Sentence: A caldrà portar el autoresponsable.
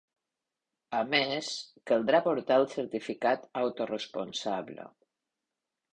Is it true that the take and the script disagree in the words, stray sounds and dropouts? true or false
true